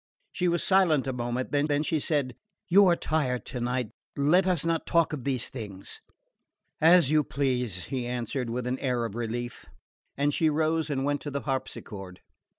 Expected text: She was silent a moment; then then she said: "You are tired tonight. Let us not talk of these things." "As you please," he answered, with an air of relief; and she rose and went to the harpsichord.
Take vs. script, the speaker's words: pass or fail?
pass